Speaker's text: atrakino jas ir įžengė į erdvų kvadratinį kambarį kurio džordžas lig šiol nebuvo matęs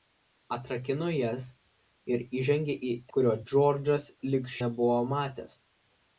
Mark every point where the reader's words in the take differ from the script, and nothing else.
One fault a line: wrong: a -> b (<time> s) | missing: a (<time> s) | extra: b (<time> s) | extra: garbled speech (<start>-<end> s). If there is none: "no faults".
missing: erdvų kvadratinį kambarį (3.0 s)
missing: šiol (4.5 s)